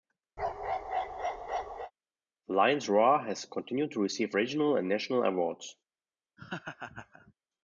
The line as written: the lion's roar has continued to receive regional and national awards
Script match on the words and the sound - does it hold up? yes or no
no